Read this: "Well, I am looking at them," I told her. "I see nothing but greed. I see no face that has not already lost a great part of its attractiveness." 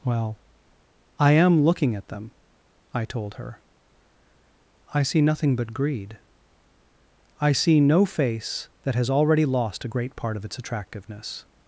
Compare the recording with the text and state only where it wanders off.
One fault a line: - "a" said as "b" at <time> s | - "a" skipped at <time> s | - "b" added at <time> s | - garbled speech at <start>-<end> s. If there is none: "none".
- "not" skipped at 9.1 s